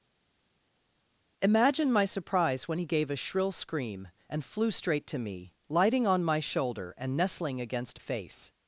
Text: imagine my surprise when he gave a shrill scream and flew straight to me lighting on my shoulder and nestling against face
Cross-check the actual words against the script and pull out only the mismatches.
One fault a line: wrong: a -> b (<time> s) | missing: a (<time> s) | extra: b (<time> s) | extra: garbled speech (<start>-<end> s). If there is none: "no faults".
no faults